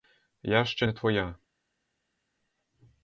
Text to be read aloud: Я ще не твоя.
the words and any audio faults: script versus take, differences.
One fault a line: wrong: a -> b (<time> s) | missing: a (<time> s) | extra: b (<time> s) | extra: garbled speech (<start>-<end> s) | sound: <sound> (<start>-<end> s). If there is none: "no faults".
no faults